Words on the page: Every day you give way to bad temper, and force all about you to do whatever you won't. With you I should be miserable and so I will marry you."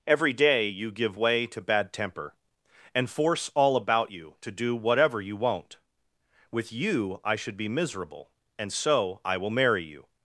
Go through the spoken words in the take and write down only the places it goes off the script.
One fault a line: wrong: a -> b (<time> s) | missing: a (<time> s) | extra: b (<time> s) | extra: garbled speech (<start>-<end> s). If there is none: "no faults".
no faults